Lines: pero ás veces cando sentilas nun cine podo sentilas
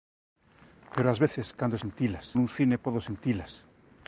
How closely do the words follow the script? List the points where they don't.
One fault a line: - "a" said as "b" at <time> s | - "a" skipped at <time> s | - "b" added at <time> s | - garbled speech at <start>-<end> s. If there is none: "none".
none